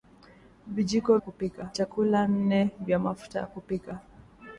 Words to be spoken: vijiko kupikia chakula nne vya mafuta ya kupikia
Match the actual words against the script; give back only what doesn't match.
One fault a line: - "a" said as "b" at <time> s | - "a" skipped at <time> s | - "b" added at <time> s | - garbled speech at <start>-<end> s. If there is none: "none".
none